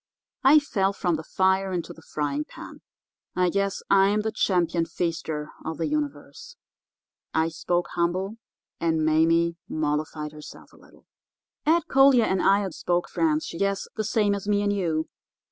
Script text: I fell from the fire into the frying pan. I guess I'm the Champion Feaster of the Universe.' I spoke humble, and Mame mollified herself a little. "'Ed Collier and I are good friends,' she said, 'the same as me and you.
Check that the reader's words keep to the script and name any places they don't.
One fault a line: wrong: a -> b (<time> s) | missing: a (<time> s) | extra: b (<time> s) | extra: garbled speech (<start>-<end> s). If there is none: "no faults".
wrong: good -> spoke (12.7 s)
wrong: said -> guess (13.6 s)